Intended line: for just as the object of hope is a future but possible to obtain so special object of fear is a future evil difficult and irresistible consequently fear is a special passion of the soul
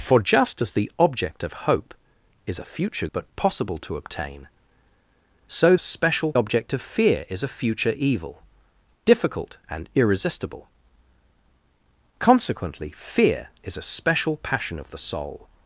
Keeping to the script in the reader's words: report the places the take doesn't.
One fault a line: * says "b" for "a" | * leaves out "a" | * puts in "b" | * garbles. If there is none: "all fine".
all fine